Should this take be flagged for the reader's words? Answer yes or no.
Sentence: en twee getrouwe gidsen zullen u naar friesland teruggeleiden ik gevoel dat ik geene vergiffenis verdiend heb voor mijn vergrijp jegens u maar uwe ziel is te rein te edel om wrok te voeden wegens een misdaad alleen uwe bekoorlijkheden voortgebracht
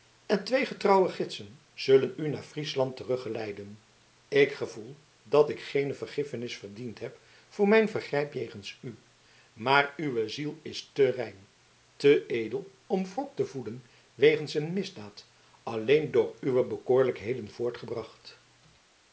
yes